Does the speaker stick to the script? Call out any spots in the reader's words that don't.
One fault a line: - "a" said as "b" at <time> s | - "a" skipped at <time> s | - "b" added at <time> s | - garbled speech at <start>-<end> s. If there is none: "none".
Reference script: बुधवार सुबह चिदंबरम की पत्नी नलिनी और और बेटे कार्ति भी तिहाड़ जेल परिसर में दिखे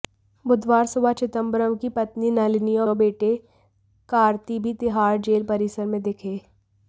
none